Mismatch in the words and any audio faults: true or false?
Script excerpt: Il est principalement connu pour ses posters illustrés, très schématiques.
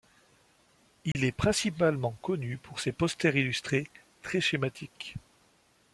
true